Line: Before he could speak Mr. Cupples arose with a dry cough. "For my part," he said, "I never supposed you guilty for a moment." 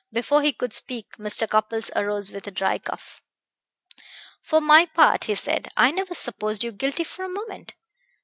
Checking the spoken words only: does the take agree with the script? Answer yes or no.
yes